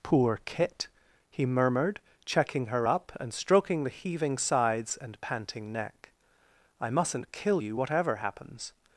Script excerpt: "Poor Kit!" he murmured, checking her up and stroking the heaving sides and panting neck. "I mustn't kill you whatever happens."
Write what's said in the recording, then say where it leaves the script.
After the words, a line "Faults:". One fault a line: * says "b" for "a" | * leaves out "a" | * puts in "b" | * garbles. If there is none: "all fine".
"Poor Kit!" he murmured, checking her up and stroking the heaving sides and panting neck. "I mustn't kill you whatever happens."
Faults:
all fine